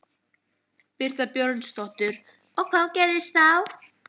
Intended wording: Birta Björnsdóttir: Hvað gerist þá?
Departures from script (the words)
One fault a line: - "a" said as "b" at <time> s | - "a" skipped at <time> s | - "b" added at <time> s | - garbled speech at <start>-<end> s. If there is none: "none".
- "Og" added at 2.6 s